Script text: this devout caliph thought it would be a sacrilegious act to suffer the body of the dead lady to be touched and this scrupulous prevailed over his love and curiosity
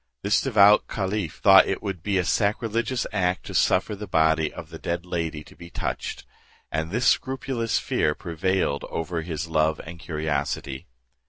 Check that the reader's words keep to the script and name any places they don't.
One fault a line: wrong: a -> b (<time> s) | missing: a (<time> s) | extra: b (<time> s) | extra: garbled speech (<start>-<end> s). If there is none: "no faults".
extra: fear (7.8 s)